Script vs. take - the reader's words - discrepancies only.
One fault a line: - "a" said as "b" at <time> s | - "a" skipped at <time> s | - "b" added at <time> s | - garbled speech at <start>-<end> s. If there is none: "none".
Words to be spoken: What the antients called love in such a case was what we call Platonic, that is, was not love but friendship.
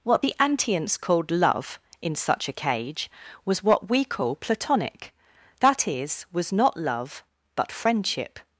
- "case" said as "cage" at 2.5 s